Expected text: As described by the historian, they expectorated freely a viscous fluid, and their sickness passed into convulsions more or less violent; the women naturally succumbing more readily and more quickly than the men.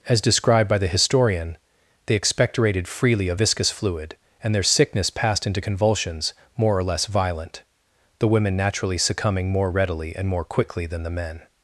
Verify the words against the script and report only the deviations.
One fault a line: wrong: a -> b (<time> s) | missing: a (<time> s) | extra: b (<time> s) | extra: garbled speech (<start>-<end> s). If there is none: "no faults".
no faults